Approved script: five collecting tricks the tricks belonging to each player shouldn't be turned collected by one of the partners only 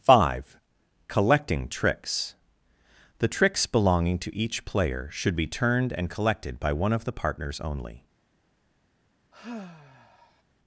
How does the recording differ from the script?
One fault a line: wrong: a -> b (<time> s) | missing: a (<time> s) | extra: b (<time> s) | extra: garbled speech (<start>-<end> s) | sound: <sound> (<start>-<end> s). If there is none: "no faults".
wrong: shouldn't -> should (5.1 s)
extra: and (5.9 s)
sound: sigh (9.3-10.4 s)